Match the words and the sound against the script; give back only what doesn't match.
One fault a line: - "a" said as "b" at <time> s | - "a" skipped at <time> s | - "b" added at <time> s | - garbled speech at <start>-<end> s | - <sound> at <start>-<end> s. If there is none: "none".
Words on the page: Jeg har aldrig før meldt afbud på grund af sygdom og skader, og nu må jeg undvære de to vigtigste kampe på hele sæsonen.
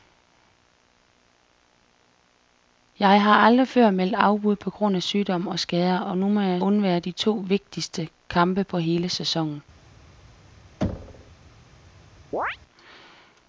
- thud at 10.8-11.3 s
- chirp at 12.3-12.6 s